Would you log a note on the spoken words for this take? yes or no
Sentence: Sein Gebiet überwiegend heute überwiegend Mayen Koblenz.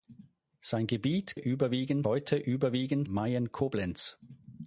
no